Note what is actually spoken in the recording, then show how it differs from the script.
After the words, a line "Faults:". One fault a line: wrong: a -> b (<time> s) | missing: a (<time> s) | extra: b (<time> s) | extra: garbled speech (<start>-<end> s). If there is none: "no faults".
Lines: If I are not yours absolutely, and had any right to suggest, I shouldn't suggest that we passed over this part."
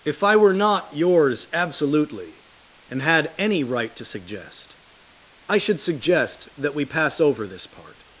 If I were not yours absolutely, and had any right to suggest, I should suggest that we pass over this part."
Faults:
wrong: are -> were (0.3 s)
wrong: shouldn't -> should (5.6 s)
wrong: passed -> pass (6.8 s)